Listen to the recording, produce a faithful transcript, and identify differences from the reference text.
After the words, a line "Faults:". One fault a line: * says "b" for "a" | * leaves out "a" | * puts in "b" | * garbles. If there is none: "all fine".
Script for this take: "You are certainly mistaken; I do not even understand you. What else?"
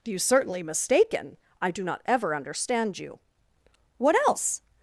"You certainly mistaken; I do not ever understand you. What else?"
Faults:
* leaves out "are"
* says "ever" for "even"